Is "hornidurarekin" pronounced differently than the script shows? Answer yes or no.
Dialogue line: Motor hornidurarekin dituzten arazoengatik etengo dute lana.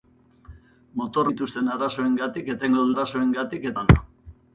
yes